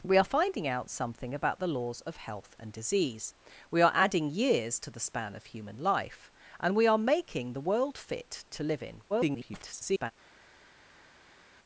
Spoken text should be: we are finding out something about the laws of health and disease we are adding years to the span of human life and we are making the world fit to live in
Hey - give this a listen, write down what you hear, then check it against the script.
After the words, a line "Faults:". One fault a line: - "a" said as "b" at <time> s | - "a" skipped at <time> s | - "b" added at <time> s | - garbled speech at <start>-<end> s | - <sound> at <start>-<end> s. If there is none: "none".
we are finding out something about the laws of health and disease we are adding years to the span of human life and we are making the world fit to live in [garbled]
Faults:
- garbled speech at 9.1-10.1 s